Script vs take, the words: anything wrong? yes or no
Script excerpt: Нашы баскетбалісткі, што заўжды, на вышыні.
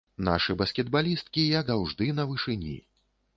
yes